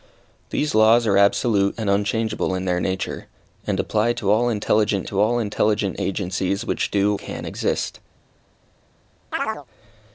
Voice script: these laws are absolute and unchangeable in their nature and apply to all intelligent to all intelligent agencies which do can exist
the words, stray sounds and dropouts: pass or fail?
fail